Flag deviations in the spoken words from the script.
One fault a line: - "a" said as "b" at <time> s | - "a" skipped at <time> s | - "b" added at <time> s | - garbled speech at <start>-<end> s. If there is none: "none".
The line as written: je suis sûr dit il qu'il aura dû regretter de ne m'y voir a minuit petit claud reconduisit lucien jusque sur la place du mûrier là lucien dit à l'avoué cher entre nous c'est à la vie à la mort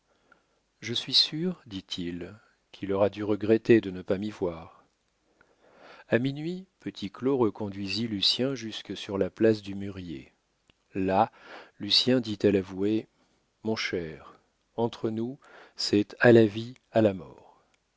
- "pas" added at 4.0 s
- "mon" added at 13.6 s